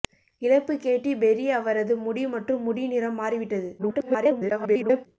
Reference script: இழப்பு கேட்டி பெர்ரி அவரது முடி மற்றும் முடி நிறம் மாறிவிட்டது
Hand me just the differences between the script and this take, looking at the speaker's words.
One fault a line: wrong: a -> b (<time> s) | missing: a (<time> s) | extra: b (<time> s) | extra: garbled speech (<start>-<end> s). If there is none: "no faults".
extra: garbled speech (3.8-5.1 s)